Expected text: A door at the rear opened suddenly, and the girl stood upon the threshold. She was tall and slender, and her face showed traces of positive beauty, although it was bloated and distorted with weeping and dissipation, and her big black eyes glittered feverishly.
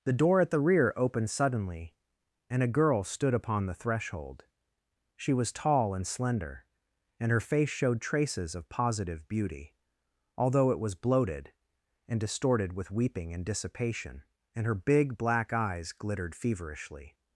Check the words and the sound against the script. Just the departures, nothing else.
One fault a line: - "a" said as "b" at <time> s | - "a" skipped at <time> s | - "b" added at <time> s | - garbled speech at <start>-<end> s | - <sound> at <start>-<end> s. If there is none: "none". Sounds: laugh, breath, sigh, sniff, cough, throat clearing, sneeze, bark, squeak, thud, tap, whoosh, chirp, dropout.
- "A" said as "The" at 0.0 s
- "the" said as "a" at 2.6 s